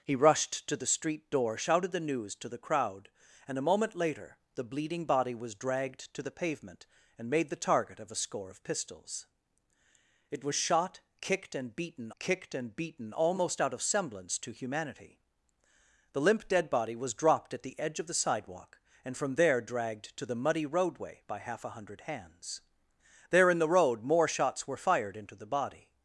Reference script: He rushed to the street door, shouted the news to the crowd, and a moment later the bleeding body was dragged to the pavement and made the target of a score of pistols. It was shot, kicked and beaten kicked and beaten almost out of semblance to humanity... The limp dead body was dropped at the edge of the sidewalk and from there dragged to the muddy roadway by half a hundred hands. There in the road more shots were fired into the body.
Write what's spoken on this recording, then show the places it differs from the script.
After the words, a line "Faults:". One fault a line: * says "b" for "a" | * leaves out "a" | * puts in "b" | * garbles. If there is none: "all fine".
He rushed to the street door, shouted the news to the crowd, and a moment later the bleeding body was dragged to the pavement and made the target of a score of pistols. It was shot, kicked and beaten kicked and beaten almost out of semblance to humanity... The limp dead body was dropped at the edge of the sidewalk and from there dragged to the muddy roadway by half a hundred hands. There in the road more shots were fired into the body.
Faults:
all fine